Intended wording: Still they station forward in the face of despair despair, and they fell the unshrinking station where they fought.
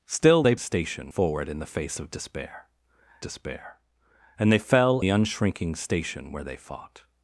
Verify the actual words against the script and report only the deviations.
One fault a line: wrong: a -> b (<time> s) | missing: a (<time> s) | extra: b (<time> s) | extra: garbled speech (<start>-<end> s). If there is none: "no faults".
no faults